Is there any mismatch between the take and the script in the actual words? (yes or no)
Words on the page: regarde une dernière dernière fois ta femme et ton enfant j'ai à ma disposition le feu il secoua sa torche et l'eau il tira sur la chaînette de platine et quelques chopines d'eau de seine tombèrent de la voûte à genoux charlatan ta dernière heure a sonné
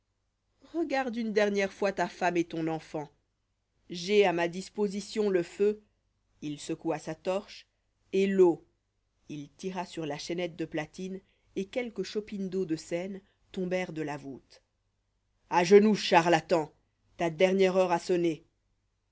yes